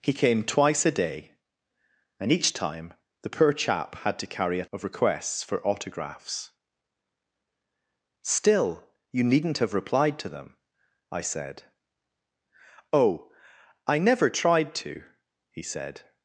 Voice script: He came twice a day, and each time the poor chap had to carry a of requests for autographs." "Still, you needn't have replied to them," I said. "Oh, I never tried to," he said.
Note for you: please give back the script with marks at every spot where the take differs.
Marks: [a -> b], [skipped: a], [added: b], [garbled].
He came twice a day, and each time the poor chap had to carry a of requests for autographs." "Still, you needn't have replied to them," I said. "Oh, I never tried to," he said.